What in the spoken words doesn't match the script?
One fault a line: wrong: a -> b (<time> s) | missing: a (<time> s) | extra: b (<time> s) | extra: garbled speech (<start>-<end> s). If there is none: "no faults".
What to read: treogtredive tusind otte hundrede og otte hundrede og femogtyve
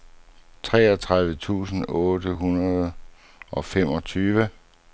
missing: otte hundrede og (3.6 s)